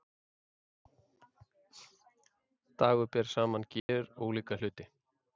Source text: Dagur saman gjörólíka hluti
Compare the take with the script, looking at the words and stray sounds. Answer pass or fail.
fail